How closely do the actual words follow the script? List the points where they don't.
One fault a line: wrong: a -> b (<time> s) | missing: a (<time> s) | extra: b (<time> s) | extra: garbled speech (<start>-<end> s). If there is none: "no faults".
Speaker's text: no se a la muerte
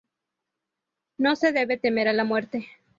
extra: debe temer (1.5 s)